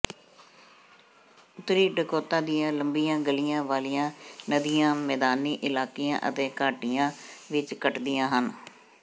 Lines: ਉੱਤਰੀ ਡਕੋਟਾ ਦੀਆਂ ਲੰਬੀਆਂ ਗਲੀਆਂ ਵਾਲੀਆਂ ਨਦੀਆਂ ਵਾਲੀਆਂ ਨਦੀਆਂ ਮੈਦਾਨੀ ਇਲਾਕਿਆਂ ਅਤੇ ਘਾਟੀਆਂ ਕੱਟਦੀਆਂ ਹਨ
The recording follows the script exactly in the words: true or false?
false